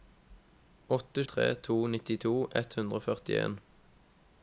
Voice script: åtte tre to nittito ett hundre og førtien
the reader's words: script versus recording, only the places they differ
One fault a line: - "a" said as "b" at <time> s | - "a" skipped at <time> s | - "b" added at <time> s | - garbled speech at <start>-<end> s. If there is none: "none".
none